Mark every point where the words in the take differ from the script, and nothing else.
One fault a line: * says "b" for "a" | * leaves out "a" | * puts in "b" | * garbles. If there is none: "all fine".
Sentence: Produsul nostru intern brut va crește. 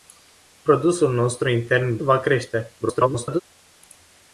* leaves out "brut"
* garbles